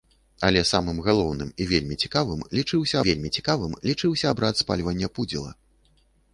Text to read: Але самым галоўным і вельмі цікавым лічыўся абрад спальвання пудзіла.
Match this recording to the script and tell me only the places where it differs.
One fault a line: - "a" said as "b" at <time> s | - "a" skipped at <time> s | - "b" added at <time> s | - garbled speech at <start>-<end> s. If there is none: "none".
- "вельмі цікавым лічыўся" added at 3.1 s